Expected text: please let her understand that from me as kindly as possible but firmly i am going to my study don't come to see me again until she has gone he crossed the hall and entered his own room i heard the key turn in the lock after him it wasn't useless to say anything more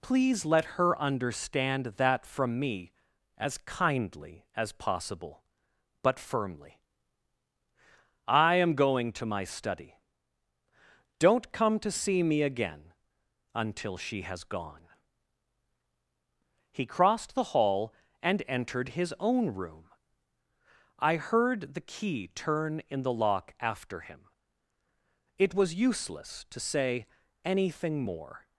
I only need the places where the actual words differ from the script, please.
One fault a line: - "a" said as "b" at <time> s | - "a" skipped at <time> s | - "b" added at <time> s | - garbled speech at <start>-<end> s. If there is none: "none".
- "wasn't" said as "was" at 25.5 s